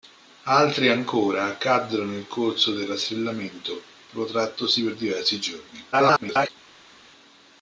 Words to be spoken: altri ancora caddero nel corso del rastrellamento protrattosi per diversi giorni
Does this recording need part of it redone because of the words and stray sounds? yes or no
yes